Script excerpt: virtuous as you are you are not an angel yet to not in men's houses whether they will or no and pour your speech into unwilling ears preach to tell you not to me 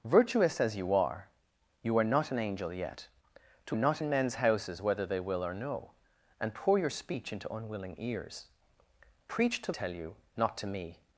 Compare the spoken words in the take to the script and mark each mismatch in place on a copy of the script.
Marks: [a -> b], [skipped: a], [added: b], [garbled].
virtuous as you are you are not an angel yet to not in men's houses whether they will or no and pour your speech into unwilling ears preach to tell you not to me